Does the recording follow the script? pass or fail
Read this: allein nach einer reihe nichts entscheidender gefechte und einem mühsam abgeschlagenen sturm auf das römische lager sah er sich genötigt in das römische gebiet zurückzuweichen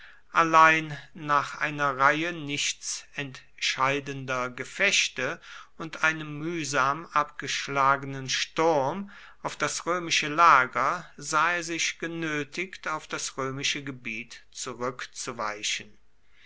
fail